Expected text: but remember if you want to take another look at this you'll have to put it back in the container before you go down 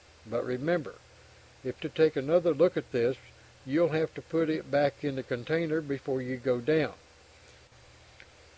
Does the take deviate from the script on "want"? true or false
true